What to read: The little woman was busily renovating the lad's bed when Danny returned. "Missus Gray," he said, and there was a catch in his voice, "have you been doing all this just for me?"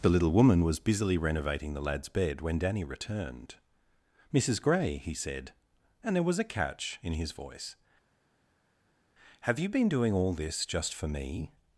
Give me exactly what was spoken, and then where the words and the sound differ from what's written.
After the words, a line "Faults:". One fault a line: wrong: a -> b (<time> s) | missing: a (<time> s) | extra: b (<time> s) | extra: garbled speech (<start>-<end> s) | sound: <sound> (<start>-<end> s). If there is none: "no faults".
The little woman was busily renovating the lad's bed when Danny returned. "Missus Gray," he said, and there was a catch in his voice, "have you been doing all this just for me?"
Faults:
no faults